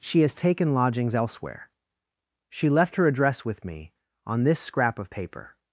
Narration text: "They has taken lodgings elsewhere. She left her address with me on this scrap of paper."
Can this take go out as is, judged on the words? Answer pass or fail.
fail